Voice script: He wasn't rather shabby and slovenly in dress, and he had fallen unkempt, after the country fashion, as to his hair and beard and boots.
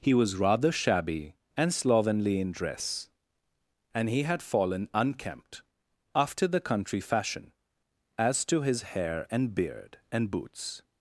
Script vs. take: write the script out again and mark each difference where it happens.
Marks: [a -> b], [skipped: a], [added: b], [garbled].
He [wasn't -> was] rather shabby and slovenly in dress, and he had fallen unkempt, after the country fashion, as to his hair and beard and boots.